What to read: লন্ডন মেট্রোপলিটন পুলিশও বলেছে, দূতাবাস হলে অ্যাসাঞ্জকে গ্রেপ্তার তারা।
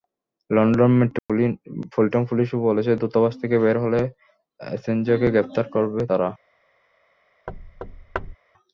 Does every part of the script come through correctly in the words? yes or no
no